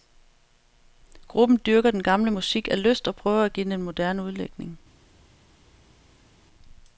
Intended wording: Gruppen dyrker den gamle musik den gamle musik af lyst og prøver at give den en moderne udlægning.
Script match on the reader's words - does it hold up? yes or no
no